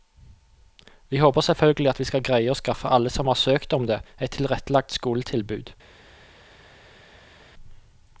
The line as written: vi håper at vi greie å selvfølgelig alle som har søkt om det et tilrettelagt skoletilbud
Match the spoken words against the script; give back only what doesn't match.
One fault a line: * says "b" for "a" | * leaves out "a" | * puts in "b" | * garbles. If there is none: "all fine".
* puts in "selvfølgelig"
* puts in "skal"
* says "skaffe" for "selvfølgelig"